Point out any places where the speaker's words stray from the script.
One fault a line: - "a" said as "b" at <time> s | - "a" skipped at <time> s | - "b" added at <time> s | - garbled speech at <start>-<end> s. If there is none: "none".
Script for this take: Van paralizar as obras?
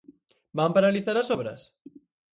none